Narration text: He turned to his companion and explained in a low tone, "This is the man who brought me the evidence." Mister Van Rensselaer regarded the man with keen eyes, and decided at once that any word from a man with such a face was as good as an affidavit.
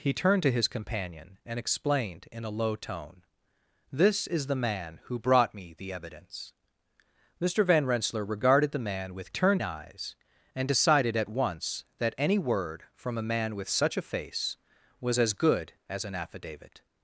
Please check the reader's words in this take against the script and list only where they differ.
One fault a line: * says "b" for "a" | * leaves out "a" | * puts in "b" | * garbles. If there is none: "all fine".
* says "turned" for "keen"